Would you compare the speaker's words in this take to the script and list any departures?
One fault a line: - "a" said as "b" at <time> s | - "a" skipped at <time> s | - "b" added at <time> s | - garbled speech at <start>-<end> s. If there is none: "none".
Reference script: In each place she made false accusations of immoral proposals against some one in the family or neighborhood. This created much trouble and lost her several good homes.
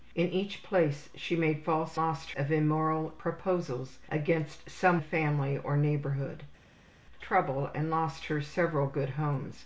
- "accusations" said as "lost" at 1.9 s
- "one in" skipped at 5.0 s
- "This created much" skipped at 6.4 s